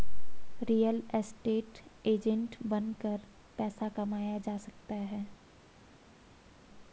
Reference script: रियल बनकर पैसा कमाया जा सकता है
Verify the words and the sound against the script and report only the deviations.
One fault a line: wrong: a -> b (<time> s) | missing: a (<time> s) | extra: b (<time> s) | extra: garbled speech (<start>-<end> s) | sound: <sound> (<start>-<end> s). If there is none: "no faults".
extra: एस्टेट एजेंट (1.1 s)